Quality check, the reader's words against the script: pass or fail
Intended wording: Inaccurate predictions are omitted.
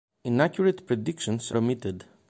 fail